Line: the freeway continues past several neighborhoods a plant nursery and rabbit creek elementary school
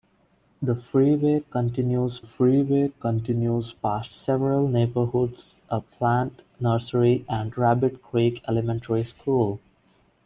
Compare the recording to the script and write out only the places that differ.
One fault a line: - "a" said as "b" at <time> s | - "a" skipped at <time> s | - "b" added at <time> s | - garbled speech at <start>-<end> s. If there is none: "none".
- "freeway continues" added at 2.2 s